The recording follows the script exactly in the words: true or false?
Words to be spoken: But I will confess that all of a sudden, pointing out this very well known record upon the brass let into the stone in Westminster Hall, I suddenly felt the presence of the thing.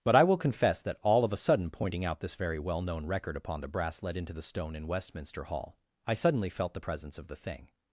true